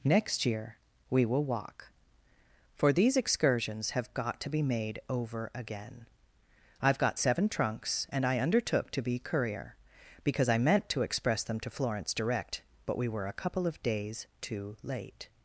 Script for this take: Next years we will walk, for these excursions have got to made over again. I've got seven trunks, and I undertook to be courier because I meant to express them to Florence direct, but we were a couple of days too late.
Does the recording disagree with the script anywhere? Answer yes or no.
yes